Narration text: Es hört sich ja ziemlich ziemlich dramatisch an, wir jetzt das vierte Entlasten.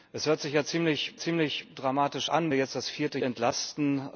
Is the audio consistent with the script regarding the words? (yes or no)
yes